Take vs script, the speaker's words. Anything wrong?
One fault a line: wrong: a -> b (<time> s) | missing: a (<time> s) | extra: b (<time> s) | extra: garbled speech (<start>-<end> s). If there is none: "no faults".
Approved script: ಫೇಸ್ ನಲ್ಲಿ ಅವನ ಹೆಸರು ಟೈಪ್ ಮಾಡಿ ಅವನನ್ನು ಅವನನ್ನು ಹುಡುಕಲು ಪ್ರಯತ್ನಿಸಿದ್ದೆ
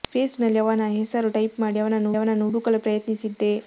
no faults